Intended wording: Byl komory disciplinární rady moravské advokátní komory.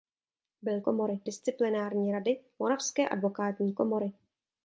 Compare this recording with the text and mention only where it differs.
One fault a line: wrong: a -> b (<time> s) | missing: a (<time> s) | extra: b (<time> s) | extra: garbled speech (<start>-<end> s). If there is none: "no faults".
no faults